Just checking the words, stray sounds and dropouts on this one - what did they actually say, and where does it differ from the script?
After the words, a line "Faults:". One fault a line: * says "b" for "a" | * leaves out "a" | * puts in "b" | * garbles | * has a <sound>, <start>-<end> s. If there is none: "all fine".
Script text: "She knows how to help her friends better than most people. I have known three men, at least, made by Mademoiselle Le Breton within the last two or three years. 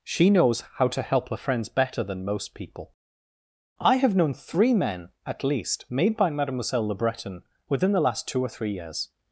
"She knows how to help her friends better than most people. I have known three men, at least, made by Mademoiselle Le Breton within the last two or three years.
Faults:
all fine